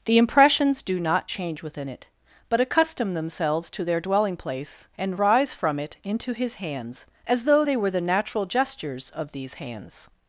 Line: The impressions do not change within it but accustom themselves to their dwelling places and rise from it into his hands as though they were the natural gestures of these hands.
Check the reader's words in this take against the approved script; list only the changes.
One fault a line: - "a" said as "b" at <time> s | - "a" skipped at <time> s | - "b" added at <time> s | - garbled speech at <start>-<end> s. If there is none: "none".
- "places" said as "place" at 4.3 s